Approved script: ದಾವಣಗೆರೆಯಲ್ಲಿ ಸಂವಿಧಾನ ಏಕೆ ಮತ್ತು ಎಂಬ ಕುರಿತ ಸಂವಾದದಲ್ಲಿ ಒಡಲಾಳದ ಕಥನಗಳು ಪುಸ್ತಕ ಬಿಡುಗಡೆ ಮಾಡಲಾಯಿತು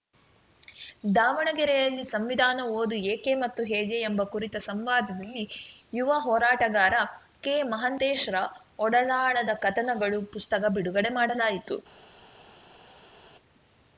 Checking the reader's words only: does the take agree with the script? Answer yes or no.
no